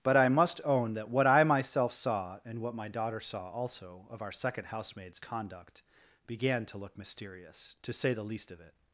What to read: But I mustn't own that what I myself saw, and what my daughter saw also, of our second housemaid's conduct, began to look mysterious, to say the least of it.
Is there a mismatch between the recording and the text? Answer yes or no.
yes